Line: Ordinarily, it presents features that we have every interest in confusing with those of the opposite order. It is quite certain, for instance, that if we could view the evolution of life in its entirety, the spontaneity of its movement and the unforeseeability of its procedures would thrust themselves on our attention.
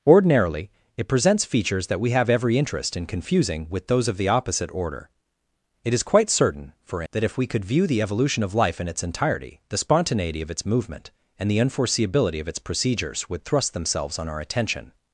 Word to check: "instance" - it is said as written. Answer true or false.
false